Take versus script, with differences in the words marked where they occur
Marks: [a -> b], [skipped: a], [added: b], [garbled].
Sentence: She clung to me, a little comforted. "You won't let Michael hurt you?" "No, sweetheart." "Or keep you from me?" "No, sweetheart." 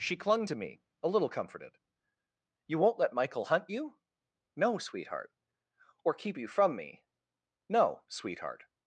She clung to me, a little comforted. "You won't let Michael [hurt -> hunt] you?" "No, sweetheart." "Or keep you from me?" "No, sweetheart."